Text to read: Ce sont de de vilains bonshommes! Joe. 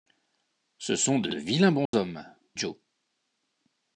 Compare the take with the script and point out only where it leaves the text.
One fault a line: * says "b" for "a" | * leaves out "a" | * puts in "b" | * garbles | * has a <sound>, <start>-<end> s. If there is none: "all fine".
* has a dropout, 1.9-1.9 s